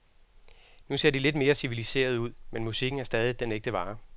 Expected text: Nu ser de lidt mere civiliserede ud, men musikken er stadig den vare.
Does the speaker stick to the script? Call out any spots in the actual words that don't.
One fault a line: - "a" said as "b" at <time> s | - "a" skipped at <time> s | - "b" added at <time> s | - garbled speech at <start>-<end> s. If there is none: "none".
- "ægte" added at 3.5 s